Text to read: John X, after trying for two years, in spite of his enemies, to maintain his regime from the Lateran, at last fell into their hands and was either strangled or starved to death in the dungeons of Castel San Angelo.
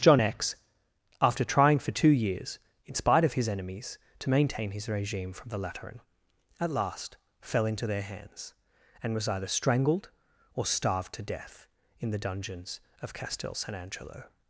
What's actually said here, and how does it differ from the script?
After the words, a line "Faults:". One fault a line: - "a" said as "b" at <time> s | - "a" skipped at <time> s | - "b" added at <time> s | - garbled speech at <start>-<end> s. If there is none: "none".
John X, after trying for two years, in spite of his enemies, to maintain his regime from the Lateran, at last fell into their hands and was either strangled or starved to death in the dungeons of Castel San Angelo.
Faults:
none